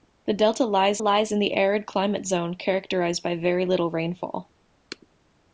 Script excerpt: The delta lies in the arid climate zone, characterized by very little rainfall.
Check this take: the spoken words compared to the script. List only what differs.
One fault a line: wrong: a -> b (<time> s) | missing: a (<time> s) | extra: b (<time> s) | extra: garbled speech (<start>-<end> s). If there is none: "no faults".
extra: lies (1.0 s)